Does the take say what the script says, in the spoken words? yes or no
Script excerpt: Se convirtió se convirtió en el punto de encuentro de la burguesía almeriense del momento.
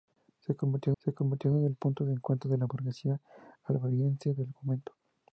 yes